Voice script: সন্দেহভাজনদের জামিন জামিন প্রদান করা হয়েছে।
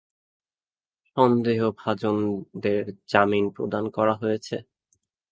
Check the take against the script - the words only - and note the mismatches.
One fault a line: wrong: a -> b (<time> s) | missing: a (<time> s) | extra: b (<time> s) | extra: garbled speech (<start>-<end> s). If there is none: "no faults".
missing: জামিন (3.5 s)